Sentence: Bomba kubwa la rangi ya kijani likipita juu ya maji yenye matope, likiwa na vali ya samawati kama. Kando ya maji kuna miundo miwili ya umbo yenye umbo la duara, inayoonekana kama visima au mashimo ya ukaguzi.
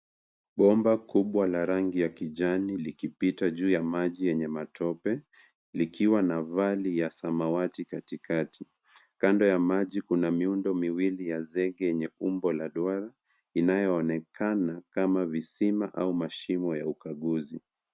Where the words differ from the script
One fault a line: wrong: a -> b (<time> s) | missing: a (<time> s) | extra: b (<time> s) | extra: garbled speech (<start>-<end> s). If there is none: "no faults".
wrong: kama -> katikati (7.9 s)
wrong: umbo -> zege (11.4 s)